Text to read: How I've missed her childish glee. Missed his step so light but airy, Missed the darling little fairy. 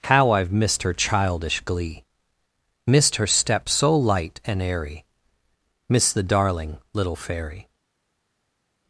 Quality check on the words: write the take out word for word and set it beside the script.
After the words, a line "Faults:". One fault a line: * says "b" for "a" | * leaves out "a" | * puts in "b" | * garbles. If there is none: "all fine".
How I've missed her childish glee. Missed her step so light and airy, Missed the darling little fairy.
Faults:
* says "her" for "his"
* says "and" for "but"